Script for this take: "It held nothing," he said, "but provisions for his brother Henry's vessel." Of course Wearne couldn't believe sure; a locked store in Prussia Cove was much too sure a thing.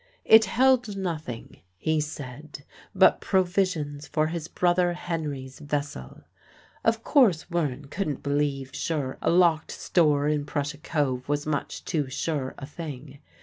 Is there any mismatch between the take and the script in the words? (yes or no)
no